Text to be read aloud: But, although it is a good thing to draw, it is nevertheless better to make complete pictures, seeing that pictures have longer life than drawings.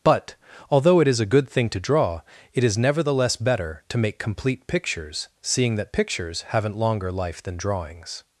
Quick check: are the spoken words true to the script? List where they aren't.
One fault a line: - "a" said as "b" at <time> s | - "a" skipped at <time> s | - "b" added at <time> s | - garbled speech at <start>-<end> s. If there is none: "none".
- "have" said as "haven't" at 6.5 s